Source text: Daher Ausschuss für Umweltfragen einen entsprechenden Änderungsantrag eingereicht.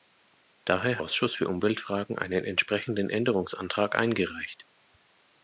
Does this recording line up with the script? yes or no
yes